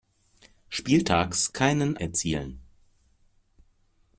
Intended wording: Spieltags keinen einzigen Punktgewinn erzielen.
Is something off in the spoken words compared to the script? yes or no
yes